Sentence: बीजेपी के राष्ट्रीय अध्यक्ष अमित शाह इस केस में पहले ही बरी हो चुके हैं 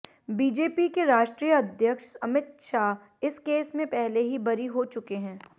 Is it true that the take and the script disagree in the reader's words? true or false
false